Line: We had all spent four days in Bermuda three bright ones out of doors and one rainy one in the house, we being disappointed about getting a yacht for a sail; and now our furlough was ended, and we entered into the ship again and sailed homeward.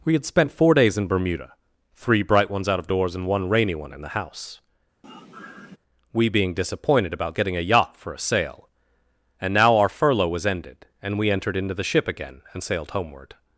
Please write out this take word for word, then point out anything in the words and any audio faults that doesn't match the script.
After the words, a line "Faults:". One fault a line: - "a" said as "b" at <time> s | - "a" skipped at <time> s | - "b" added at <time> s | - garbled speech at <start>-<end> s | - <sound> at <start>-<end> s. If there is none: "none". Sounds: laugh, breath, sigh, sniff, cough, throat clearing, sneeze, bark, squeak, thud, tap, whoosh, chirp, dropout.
We had spent four days in Bermuda three bright ones out of doors and one rainy one in the house, we being disappointed about getting a yacht for a sail; and now our furlough was ended, and we entered into the ship again and sailed homeward.
Faults:
- "all" skipped at 0.2 s
- sigh at 5.0-5.8 s